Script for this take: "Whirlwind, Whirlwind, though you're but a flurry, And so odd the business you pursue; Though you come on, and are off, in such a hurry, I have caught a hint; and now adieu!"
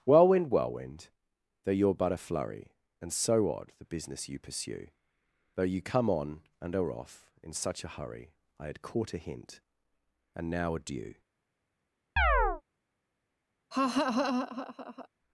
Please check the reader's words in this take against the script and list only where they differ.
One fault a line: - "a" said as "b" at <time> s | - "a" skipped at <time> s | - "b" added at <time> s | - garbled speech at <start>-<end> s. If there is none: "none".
- "have" said as "had" at 8.7 s